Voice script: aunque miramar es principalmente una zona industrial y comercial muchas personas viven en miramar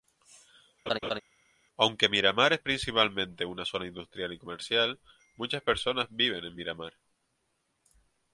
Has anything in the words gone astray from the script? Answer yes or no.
no